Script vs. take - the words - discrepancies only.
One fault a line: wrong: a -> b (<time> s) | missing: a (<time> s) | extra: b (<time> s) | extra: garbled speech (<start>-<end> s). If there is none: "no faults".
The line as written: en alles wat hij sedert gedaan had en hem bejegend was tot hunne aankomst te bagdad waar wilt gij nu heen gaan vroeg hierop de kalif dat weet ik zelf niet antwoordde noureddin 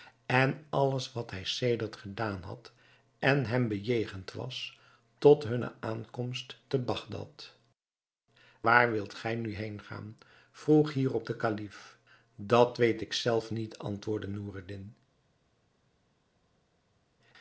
no faults